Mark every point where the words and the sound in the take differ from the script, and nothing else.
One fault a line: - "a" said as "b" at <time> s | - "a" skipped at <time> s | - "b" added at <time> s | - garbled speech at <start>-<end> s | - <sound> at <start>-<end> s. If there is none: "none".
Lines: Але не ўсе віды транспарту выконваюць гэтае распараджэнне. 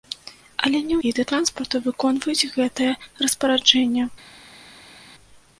- "ўсе" skipped at 0.9 s